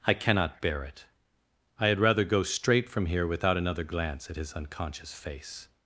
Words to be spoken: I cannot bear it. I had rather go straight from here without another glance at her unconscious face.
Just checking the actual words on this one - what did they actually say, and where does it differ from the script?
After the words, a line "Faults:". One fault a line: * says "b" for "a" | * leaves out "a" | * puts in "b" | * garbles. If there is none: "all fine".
I cannot bear it. I had rather go straight from here without another glance at his unconscious face.
Faults:
* says "his" for "her"